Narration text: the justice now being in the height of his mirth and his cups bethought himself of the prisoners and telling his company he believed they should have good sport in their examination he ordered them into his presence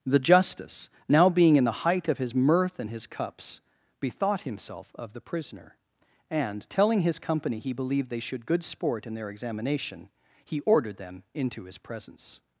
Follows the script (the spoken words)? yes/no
no